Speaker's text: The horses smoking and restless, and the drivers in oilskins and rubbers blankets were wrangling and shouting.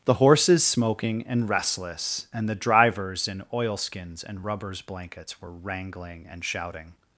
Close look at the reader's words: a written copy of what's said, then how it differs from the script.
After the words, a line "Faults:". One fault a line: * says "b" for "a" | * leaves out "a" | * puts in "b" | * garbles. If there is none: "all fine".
The horses smoking and restless, and the drivers in oilskins and rubbers blankets were wrangling and shouting.
Faults:
all fine